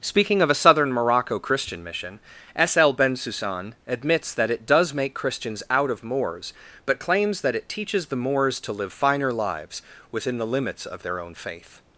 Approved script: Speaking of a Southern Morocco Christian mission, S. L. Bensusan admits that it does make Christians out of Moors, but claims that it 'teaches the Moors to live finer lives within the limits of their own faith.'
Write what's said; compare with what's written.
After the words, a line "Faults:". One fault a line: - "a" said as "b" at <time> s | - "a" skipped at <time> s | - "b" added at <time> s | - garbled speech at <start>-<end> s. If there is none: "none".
Speaking of a Southern Morocco Christian mission, S. L. Bensusan admits that it does make Christians out of Moors, but claims that it 'teaches the Moors to live finer lives within the limits of their own faith.'
Faults:
none